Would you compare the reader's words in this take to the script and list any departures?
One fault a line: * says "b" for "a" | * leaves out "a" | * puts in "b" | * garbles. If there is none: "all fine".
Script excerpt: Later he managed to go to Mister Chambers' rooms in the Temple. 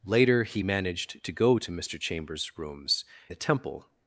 * leaves out "in"